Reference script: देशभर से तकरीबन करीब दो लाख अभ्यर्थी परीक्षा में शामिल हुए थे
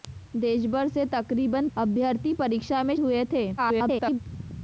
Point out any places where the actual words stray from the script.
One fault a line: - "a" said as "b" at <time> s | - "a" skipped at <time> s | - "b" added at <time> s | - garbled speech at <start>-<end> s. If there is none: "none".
- "करीब दो लाख" skipped at 1.7 s
- "शामिल" skipped at 2.9 s
- garbled speech at 3.6-4.2 s